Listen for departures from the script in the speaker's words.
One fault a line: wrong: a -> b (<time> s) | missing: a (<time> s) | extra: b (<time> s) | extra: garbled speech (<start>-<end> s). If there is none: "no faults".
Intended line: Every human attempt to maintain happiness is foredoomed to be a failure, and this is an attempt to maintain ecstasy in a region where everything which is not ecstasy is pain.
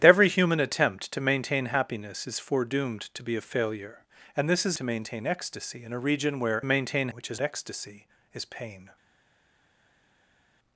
missing: an attempt (4.8 s)
wrong: everything -> maintain (6.6 s)
missing: not (7.4 s)